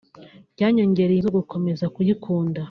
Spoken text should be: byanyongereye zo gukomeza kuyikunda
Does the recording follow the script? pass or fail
pass